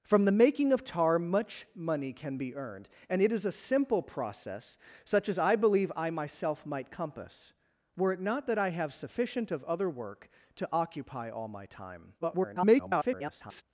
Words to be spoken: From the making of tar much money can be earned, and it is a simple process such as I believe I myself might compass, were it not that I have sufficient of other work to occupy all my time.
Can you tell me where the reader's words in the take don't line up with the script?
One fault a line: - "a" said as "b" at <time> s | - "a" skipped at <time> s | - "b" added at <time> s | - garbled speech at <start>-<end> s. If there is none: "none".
- garbled speech at 12.2-13.6 s